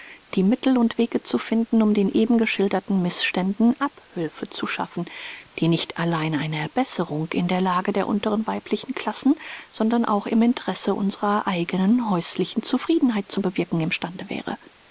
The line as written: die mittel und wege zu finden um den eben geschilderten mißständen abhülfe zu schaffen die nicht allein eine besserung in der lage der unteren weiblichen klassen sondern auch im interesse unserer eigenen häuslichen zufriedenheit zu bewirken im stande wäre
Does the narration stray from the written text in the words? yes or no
no